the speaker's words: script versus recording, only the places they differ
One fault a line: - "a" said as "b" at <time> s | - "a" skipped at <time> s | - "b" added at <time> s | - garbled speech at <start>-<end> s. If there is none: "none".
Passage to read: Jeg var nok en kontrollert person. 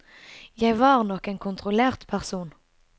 none